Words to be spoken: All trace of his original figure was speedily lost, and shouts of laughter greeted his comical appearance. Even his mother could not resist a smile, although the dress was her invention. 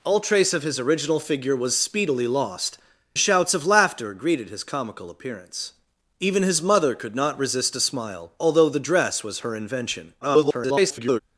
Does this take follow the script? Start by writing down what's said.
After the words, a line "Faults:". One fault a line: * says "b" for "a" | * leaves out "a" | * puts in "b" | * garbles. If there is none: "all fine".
All trace of his original figure was speedily lost, shouts of laughter greeted his comical appearance. Even his mother could not resist a smile, although the dress was her invention. [garbled]
Faults:
* leaves out "and"
* garbles